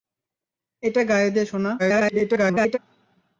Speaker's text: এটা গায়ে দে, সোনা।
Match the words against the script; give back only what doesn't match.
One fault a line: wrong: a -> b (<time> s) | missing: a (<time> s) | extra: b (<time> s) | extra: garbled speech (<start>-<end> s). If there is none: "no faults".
extra: garbled speech (1.8-2.8 s)